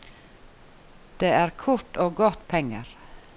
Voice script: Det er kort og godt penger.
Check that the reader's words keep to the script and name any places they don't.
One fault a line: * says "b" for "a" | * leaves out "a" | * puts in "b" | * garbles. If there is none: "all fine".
all fine